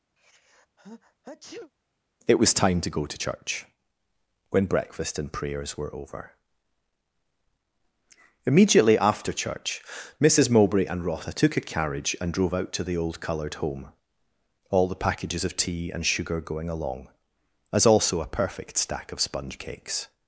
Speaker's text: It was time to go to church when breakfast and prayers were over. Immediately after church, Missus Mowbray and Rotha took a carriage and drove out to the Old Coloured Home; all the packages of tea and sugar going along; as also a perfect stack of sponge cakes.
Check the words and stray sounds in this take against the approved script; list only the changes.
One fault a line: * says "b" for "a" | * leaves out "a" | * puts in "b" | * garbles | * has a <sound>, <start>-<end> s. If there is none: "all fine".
* has a sneeze, 0.2-1.7 s